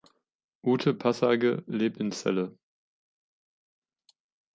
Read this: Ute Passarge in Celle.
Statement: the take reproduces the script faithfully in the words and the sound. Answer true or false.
false